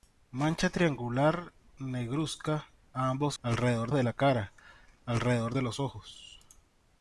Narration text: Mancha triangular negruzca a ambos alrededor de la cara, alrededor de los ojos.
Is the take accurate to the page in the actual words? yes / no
yes